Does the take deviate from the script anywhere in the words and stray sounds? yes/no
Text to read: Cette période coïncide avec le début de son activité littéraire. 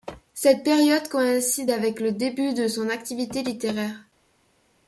no